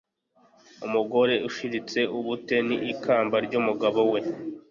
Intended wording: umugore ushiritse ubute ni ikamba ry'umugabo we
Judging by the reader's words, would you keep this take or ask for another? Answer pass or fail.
pass